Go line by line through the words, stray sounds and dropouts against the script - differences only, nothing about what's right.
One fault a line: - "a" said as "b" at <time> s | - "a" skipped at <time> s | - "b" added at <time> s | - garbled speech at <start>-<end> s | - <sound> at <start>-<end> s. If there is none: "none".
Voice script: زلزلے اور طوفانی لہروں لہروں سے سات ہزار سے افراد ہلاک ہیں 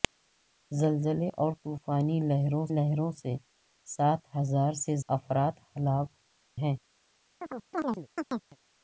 - chirp at 7.4-8.6 s